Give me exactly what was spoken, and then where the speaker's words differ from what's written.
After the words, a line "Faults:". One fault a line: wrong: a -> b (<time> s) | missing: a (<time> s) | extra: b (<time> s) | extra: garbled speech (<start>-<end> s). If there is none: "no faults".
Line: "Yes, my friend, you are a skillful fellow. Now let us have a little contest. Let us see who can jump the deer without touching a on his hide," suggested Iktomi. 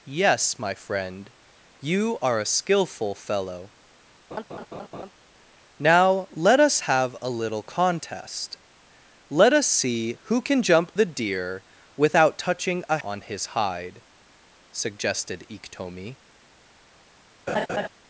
"Yes, my friend, you are a skillful fellow. Now let us have a little contest. Let us see who can jump the deer without touching a on his hide," suggested Iktomi.
Faults:
no faults